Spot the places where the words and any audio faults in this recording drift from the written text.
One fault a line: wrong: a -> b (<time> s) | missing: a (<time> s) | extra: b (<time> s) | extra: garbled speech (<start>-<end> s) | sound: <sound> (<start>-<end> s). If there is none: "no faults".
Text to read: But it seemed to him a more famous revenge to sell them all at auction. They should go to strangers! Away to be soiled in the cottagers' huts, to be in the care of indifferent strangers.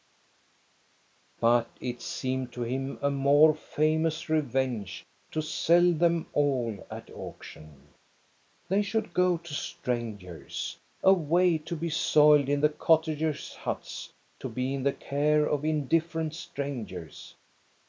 no faults